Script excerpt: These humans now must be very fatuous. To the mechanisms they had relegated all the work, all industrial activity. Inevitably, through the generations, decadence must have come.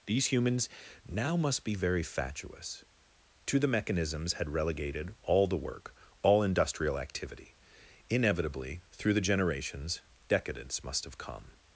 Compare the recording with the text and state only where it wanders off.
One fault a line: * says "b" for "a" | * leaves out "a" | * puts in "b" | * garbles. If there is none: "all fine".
* leaves out "they"